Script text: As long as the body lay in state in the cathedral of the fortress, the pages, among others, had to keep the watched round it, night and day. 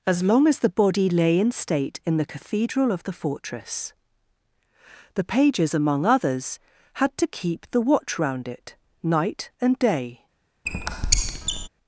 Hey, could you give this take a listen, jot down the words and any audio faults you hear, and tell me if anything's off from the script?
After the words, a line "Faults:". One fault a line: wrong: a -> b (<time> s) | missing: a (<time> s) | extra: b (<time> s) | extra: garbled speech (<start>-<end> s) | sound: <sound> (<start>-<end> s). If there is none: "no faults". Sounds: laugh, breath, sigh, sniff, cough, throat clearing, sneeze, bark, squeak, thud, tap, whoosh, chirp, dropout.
As long as the body lay in state in the cathedral of the fortress, the pages, among others, had to keep the watch round it, night and day.
Faults:
wrong: watched -> watch (7.8 s)
sound: squeak (10.7-11.7 s)